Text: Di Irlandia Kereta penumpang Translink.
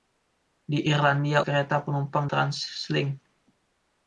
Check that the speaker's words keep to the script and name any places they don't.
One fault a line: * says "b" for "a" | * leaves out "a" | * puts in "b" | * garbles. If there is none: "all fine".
all fine